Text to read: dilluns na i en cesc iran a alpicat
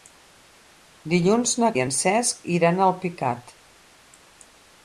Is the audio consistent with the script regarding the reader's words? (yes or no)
yes